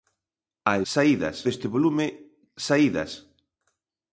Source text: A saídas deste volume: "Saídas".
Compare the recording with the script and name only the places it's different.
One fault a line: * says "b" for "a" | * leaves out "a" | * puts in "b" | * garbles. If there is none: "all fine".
all fine